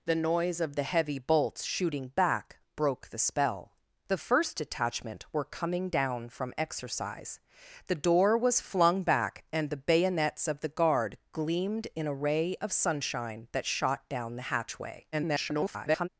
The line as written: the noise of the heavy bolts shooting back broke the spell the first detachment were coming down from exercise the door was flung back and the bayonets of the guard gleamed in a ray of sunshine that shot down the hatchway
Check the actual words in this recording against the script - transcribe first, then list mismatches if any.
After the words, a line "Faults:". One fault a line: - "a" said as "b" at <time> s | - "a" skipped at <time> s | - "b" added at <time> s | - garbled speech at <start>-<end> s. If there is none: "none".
the noise of the heavy bolts shooting back broke the spell the first detachment were coming down from exercise the door was flung back and the bayonets of the guard gleamed in a ray of sunshine that shot down the hatchway [garbled]
Faults:
- garbled speech at 15.1-16.1 s